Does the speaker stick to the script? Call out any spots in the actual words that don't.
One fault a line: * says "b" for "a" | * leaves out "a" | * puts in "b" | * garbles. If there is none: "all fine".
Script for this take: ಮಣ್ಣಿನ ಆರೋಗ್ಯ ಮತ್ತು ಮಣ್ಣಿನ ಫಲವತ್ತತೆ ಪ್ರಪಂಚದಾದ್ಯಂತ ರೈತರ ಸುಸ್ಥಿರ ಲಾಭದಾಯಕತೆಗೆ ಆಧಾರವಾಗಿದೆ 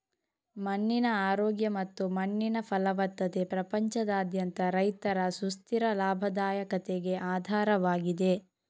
all fine